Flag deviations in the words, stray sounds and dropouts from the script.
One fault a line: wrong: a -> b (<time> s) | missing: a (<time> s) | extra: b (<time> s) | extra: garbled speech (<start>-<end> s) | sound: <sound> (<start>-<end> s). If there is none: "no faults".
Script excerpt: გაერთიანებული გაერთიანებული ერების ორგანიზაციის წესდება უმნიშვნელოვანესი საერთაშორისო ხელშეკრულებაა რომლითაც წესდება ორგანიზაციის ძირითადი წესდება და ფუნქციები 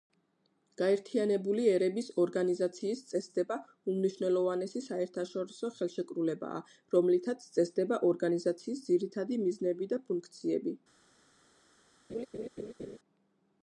missing: გაერთიანებული (1.6 s)
wrong: წესდება -> მიზნები (9.5 s)
sound: laugh (12.1-13.0 s)